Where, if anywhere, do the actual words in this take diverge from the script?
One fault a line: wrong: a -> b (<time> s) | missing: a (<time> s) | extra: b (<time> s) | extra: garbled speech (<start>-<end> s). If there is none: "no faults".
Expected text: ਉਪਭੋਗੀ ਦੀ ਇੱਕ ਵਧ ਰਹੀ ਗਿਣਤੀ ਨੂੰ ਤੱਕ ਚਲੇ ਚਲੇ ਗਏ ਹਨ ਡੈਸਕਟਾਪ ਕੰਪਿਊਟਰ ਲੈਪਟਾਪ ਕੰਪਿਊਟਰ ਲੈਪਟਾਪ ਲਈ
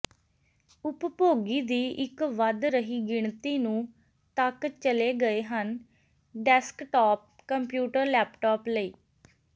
missing: ਚਲੇ (5.1 s)
missing: ਕੰਪਿਊਟਰ ਲੈਪਟਾਪ (8.7 s)